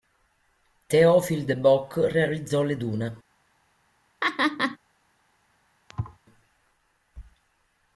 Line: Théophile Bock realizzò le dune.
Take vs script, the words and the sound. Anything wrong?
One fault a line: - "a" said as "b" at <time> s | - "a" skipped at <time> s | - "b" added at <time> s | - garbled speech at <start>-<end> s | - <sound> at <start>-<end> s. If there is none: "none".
- "de" added at 1.4 s
- laugh at 4.2-4.8 s
- thud at 5.9-6.2 s